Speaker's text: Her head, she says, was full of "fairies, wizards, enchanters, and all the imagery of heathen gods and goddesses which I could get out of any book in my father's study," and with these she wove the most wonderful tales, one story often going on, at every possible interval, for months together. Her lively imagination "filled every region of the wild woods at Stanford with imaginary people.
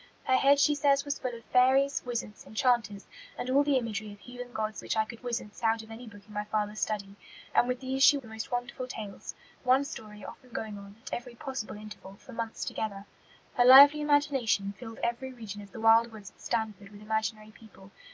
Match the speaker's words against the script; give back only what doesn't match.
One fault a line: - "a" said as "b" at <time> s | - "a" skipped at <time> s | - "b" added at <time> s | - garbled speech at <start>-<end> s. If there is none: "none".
- "and goddesses" skipped at 4.8 s
- "get" said as "wizards" at 5.2 s
- "wove" skipped at 8.2 s